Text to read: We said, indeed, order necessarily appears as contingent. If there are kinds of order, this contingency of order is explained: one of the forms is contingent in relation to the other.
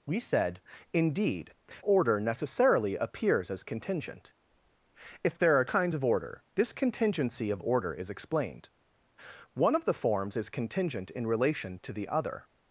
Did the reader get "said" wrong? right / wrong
right